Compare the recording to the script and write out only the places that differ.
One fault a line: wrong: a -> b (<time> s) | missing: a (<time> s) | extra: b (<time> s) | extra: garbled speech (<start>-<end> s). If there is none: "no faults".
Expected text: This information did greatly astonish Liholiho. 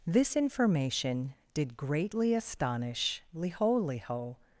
no faults